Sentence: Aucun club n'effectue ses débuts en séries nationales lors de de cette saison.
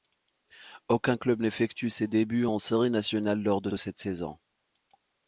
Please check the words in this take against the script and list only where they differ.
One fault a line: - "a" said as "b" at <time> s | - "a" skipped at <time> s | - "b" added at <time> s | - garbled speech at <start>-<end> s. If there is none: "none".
none